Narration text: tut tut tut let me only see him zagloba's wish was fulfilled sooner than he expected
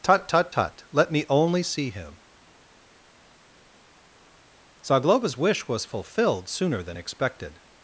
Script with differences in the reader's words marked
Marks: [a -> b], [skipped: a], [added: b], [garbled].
tut tut tut let me only see him zagloba's wish was fulfilled sooner than [skipped: he] expected